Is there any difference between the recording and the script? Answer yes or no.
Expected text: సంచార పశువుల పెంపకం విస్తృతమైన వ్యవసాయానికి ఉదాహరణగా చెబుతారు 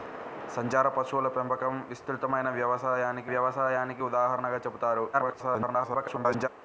yes